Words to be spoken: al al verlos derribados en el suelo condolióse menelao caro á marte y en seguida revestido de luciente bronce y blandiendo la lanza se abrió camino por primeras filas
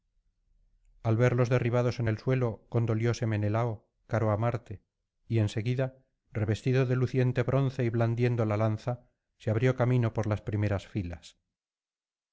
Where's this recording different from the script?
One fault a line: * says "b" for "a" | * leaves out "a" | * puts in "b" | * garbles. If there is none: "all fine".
* leaves out "al"
* puts in "las"